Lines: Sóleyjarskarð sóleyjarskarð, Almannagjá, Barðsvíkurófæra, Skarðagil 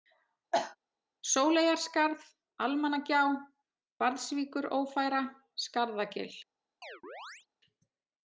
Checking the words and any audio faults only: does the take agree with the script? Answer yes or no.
no